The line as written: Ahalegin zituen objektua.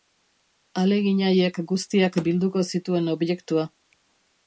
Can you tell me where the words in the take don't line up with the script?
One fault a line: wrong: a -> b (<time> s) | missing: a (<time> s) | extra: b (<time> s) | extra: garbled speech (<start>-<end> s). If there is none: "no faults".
extra: haiek guztiak bilduko (1.3 s)